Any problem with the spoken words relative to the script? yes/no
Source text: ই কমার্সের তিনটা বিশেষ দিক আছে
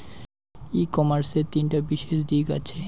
no